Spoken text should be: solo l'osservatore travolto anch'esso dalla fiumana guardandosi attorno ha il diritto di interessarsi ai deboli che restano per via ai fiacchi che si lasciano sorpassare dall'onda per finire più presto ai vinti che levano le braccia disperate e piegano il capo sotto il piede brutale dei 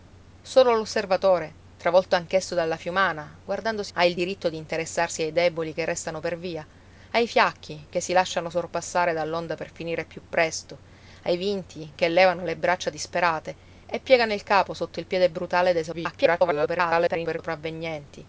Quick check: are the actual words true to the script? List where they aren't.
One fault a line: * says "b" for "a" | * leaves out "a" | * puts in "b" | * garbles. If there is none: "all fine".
* leaves out "attorno"
* garbles